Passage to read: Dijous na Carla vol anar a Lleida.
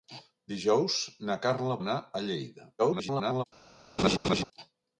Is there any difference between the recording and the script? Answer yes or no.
yes